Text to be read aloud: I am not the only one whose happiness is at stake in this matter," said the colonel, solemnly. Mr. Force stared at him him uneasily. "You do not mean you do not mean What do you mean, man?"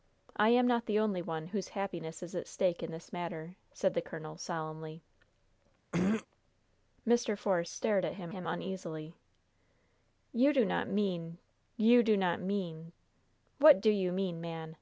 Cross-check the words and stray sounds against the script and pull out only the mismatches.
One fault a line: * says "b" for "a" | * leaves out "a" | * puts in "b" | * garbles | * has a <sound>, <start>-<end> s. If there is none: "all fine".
* has a throat clearing, 5.9-6.3 s